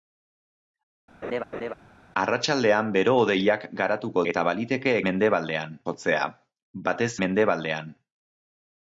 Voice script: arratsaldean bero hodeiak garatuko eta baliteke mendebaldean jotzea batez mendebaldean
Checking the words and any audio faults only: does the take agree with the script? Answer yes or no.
no